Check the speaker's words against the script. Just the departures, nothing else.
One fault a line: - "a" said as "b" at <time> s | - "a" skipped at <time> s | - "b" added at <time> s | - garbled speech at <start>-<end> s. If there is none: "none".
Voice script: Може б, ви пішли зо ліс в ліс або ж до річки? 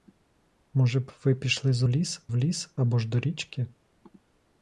none